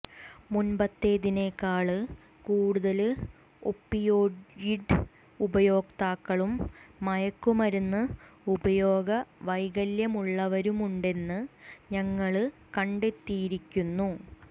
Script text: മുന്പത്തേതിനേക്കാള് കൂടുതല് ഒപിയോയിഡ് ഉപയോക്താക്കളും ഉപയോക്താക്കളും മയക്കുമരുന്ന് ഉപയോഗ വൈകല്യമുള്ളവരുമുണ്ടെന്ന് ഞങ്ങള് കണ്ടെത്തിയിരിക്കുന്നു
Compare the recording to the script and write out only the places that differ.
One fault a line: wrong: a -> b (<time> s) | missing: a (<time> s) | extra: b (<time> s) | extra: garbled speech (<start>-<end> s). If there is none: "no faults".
missing: ഉപയോക്താക്കളും (6.5 s)